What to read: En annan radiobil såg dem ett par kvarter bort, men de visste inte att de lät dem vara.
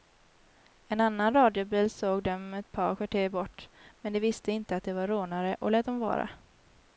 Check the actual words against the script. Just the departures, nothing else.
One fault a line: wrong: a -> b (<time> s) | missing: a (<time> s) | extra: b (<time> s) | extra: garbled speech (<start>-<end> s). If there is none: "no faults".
extra: var rånare och (4.9 s)